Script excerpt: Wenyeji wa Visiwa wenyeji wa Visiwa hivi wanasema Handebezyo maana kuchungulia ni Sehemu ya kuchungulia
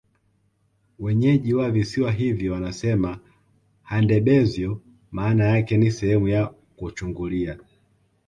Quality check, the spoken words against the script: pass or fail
fail